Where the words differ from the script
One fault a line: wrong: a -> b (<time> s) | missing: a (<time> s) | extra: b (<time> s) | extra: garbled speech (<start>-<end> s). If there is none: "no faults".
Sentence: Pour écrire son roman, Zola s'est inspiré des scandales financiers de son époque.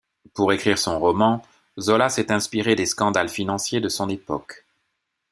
no faults